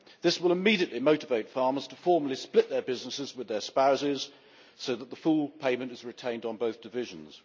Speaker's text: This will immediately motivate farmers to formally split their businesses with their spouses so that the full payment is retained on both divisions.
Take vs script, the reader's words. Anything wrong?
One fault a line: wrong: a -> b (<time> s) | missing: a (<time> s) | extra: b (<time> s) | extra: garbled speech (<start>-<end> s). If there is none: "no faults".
no faults